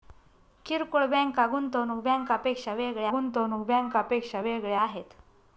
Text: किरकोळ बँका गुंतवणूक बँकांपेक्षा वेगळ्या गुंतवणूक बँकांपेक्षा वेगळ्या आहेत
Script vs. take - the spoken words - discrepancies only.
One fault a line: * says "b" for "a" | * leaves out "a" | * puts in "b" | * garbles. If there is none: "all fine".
all fine